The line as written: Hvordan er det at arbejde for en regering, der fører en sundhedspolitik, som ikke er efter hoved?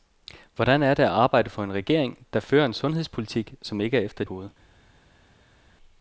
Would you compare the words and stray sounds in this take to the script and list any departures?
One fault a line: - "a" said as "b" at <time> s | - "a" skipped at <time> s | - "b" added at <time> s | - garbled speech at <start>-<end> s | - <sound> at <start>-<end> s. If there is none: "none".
none